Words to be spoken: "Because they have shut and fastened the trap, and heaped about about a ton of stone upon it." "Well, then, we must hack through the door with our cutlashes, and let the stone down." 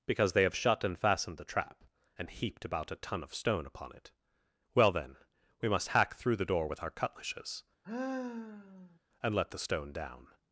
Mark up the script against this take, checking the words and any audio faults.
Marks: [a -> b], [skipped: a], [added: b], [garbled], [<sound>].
"Because they have shut and fastened the trap, and heaped about [skipped: about] a ton of stone upon it." "Well, then, we must hack through the door with our cutlashes, [sigh] and let the stone down."